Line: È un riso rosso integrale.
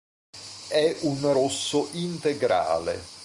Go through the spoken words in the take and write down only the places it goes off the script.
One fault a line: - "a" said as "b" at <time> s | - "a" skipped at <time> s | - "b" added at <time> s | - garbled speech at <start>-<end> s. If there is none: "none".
- "riso" skipped at 1.3 s